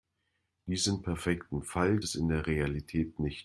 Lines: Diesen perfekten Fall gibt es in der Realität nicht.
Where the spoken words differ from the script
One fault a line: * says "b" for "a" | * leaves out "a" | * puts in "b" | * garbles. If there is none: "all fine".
* leaves out "gibt"